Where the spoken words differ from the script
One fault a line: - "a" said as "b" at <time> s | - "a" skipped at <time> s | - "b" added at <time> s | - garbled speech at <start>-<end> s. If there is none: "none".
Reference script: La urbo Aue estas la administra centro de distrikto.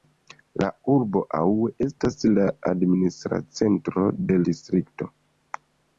none